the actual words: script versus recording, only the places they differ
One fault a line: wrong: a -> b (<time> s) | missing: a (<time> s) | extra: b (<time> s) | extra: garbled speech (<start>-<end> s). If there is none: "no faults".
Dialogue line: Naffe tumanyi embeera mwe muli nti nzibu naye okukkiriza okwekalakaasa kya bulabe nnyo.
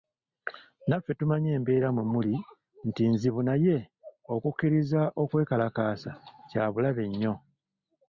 no faults